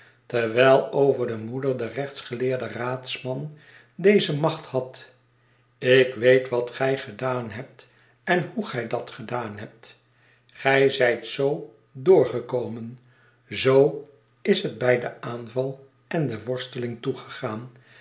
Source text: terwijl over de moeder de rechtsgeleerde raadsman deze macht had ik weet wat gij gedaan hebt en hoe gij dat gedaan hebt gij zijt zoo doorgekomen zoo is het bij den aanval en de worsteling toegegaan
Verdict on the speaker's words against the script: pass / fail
pass